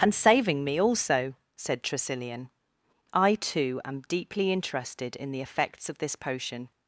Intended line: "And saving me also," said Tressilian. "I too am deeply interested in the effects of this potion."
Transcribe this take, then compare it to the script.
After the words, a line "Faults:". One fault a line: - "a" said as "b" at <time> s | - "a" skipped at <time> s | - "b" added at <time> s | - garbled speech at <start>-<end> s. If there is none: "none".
"And saving me also," said Tressilian. "I too am deeply interested in the effects of this potion."
Faults:
none